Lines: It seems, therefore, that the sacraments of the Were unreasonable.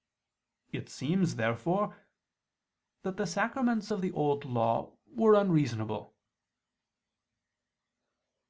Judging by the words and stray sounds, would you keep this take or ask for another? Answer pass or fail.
fail